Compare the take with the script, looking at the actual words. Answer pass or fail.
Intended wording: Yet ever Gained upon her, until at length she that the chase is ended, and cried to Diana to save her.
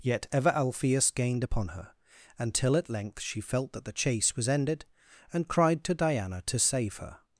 fail